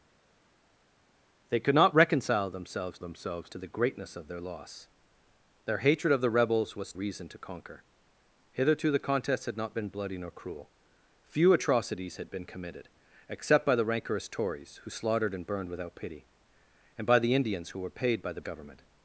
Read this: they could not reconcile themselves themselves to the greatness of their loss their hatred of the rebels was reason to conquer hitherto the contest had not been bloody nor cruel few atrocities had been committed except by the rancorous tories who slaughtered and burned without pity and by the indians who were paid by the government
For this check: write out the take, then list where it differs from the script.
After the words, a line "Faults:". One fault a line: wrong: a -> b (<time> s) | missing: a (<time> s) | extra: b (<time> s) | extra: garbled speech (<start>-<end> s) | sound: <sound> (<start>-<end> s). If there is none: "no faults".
they could not reconcile themselves themselves to the greatness of their loss their hatred of the rebels was reason to conquer hitherto the contest had not been bloody nor cruel few atrocities had been committed except by the rancorous tories who slaughtered and burned without pity and by the indians who were paid by the government
Faults:
no faults